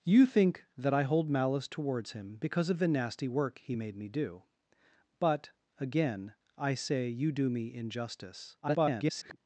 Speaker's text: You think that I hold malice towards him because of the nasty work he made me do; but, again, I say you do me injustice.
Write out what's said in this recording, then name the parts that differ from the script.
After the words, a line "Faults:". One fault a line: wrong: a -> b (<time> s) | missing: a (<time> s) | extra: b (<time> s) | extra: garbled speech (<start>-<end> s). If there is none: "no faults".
You think that I hold malice towards him because of the nasty work he made me do; but, again, I say you do me injustice. [garbled]
Faults:
extra: garbled speech (8.6-9.4 s)